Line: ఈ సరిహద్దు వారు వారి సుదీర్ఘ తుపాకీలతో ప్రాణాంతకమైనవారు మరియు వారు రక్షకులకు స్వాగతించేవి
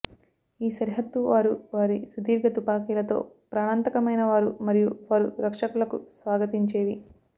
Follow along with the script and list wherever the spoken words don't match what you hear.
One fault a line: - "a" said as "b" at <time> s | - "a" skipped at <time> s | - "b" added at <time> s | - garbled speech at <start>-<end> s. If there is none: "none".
none